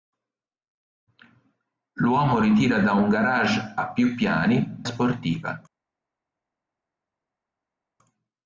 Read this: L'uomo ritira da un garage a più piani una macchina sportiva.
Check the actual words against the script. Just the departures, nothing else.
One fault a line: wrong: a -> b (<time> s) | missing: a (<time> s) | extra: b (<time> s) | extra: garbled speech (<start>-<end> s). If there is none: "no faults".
missing: una macchina (4.8 s)